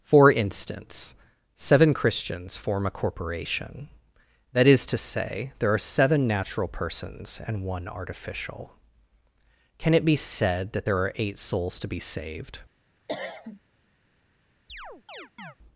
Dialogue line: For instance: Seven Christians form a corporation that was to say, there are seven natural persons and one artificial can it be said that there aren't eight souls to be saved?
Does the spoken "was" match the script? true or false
false